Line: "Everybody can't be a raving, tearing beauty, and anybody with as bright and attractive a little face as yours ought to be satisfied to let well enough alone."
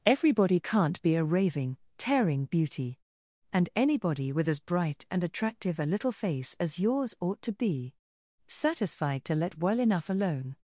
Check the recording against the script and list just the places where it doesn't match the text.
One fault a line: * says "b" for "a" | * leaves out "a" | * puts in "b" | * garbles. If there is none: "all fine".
all fine